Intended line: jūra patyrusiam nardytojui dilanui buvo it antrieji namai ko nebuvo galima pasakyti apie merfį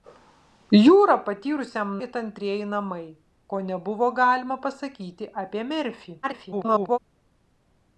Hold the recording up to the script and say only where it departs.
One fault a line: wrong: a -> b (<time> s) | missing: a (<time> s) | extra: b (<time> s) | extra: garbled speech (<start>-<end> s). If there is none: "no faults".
missing: nardytojui dilanui buvo (1.9 s)
extra: garbled speech (6.2-7.0 s)